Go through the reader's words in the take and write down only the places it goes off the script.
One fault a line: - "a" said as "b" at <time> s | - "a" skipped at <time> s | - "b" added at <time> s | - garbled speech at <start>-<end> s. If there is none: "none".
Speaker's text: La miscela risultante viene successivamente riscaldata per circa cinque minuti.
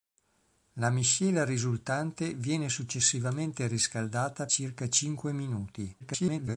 - "per" skipped at 4.5 s
- garbled speech at 6.0-6.6 s